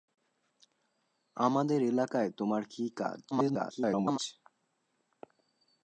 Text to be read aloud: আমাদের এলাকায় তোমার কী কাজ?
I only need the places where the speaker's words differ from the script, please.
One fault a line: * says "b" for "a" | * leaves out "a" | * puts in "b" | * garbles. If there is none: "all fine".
* garbles